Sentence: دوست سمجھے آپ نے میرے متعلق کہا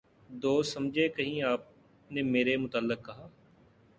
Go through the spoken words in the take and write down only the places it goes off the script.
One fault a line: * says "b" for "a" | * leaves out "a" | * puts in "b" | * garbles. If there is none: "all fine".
* puts in "کہیں"